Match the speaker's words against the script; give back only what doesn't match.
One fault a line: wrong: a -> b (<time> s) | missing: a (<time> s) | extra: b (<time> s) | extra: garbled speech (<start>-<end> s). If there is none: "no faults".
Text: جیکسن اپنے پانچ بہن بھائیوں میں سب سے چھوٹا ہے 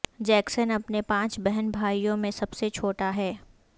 no faults